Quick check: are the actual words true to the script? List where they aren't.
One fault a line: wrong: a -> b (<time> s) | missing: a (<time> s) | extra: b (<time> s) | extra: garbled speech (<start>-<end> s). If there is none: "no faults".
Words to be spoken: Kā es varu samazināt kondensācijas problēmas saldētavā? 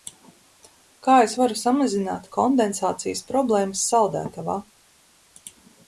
no faults